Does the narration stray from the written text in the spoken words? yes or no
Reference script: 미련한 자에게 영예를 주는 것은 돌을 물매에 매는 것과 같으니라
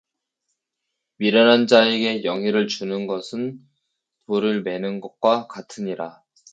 yes